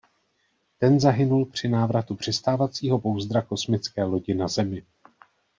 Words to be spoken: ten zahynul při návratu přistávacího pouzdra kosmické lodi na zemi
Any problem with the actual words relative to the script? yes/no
no